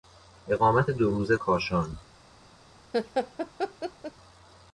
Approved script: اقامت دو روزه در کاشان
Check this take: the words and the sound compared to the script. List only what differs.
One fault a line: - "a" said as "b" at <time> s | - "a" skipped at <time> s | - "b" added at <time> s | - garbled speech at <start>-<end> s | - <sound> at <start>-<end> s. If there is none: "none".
- "در" skipped at 1.4 s
- laugh at 2.9-4.1 s